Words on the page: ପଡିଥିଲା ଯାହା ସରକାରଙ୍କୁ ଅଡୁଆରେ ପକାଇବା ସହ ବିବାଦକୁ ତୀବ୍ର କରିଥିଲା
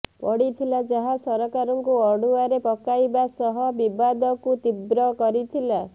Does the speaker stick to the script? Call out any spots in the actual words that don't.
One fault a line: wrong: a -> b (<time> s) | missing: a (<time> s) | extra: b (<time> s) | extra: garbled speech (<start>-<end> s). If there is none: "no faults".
no faults